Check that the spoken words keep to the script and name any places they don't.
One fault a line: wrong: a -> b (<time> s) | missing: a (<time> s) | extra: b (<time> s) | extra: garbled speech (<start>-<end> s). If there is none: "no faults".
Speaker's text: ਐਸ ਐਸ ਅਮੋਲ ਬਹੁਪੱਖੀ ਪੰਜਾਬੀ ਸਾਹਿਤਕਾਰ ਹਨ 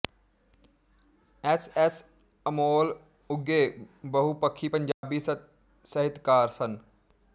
extra: ਉਘੇ (3.3 s)
wrong: ਹਨ -> ਸਨ (6.5 s)